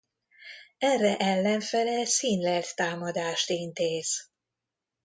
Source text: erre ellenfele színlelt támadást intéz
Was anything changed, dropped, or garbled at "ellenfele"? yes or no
no